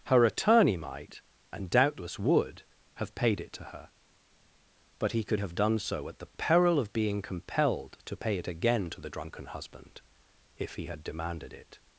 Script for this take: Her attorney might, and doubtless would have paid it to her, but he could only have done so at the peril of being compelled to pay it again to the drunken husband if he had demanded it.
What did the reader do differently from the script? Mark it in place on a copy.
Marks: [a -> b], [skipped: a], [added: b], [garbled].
Her attorney might, and doubtless would have paid it to her, but he could [skipped: only] have done so at the peril of being compelled to pay it again to the drunken husband if he had demanded it.